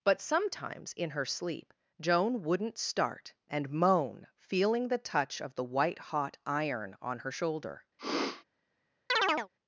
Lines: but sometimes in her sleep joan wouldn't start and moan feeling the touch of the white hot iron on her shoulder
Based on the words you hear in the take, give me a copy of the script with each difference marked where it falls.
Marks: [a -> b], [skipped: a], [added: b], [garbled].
but sometimes in her sleep joan wouldn't start and moan feeling the touch of the white hot iron on her shoulder